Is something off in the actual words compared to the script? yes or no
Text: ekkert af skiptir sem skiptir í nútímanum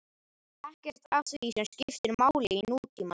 yes